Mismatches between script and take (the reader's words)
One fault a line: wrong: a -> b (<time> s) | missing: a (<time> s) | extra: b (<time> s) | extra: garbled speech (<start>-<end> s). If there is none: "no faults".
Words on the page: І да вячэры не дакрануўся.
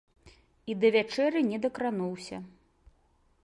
no faults